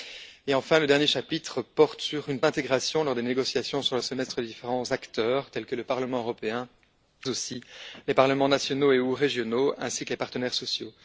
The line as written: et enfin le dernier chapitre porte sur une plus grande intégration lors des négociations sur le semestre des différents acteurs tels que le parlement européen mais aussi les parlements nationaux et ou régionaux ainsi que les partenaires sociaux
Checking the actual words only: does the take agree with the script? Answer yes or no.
no